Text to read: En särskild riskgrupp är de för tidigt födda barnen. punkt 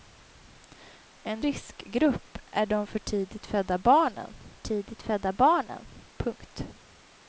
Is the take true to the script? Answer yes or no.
no